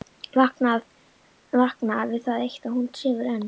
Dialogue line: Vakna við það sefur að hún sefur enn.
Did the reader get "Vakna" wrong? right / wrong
right